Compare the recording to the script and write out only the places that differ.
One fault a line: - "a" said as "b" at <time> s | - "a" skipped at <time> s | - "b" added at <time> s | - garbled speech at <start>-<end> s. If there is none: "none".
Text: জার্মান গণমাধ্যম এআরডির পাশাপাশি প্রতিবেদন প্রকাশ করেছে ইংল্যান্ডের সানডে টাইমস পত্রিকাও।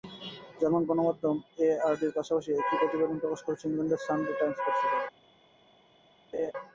- "একই" added at 2.5 s